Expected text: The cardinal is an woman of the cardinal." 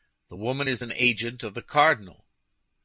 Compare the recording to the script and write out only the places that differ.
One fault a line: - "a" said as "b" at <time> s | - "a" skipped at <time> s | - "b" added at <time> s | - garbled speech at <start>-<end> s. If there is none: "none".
- "cardinal" said as "woman" at 0.3 s
- "woman" said as "agent" at 1.0 s